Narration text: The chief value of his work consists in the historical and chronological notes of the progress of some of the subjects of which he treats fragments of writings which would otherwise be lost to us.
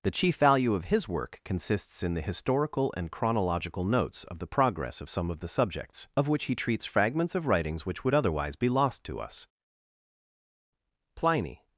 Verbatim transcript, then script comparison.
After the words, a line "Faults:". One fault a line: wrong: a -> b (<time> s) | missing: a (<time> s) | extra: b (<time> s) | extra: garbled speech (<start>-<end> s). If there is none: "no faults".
The chief value of his work consists in the historical and chronological notes of the progress of some of the subjects of which he treats fragments of writings which would otherwise be lost to us. Pliny
Faults:
extra: Pliny (11.2 s)